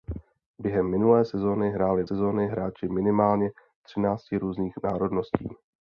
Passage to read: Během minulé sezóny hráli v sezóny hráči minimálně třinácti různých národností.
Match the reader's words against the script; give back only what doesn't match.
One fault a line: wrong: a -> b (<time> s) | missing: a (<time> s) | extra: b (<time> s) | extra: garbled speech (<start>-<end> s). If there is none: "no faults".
no faults